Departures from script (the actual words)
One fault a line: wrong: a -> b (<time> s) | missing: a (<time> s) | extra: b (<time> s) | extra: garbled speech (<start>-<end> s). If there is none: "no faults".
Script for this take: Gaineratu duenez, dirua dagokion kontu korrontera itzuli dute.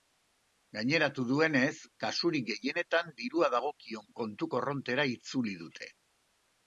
extra: kasurik gehienetan (2.0 s)